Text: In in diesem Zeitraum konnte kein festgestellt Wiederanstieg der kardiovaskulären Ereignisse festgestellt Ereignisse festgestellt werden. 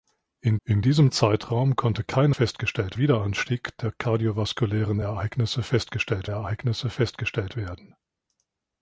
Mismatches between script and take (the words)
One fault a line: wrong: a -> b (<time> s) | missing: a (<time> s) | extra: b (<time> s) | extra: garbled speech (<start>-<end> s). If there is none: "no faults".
no faults